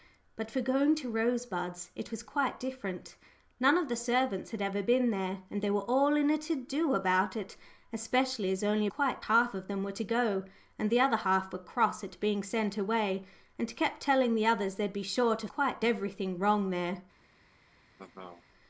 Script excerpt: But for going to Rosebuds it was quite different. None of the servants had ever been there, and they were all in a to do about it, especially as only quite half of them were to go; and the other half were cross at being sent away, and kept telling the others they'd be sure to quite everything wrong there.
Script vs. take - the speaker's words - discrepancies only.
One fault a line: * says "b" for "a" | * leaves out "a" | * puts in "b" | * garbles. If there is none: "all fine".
all fine